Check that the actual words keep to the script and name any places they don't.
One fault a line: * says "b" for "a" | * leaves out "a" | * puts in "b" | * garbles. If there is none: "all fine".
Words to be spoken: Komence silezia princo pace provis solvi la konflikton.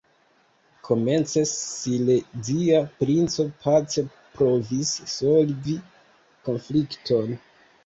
* leaves out "la"